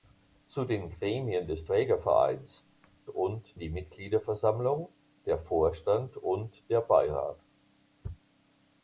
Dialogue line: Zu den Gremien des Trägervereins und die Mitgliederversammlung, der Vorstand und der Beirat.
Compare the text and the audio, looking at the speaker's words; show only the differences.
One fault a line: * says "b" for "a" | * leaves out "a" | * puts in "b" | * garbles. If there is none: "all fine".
all fine